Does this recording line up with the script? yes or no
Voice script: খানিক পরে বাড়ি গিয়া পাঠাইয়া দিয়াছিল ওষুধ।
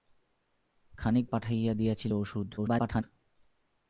no